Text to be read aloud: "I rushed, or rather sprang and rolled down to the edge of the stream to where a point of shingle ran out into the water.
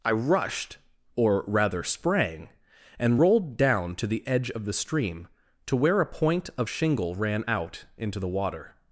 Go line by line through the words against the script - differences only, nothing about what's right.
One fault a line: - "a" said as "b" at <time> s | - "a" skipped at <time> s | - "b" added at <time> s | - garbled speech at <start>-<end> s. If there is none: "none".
none